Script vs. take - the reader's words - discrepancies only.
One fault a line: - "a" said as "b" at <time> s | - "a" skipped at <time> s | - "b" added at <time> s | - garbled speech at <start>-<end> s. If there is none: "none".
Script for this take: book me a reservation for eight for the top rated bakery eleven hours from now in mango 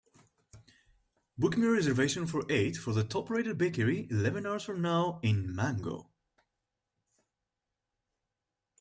none